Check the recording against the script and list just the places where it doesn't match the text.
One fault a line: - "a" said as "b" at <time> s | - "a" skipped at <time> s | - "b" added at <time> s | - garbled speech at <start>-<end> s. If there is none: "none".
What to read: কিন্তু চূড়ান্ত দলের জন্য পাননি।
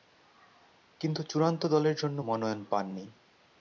- "মনোনয়ন" added at 2.2 s